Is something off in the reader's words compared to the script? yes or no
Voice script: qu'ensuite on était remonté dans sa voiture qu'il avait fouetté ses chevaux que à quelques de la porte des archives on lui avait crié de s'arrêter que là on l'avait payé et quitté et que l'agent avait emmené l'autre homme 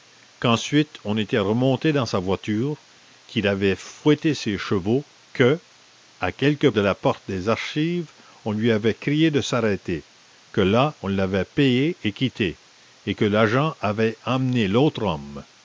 no